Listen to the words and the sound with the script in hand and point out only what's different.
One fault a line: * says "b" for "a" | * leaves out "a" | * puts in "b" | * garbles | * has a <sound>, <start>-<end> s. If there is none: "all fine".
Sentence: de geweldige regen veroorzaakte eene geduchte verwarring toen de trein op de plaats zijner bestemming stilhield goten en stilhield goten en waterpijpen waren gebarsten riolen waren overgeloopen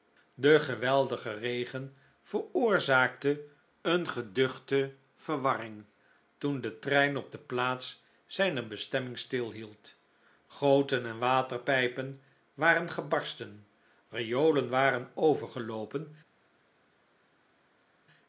* leaves out "stilhield goten en"